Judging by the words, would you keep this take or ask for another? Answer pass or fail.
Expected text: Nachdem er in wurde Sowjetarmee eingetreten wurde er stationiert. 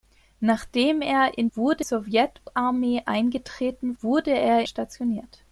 pass